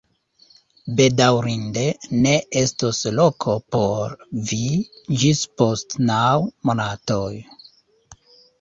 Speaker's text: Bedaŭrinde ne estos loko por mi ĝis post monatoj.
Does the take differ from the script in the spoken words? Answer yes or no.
yes